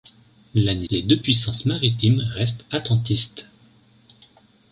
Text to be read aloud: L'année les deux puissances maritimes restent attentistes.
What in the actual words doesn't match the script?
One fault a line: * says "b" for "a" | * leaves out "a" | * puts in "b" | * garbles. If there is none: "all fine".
all fine